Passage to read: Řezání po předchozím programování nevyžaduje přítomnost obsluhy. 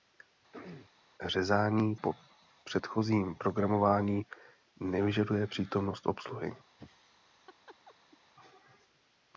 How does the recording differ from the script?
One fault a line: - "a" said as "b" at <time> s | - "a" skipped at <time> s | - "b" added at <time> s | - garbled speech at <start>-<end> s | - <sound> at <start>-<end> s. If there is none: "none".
- throat clearing at 0.5-1.0 s
- laugh at 6.8-8.2 s